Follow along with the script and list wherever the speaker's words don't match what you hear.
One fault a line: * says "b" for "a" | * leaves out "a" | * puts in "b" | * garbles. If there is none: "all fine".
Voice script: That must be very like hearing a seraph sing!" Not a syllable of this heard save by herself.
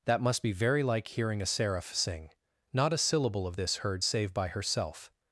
all fine